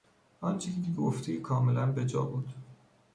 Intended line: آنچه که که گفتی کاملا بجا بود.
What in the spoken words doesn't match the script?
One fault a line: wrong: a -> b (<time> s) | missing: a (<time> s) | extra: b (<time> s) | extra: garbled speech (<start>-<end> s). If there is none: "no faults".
no faults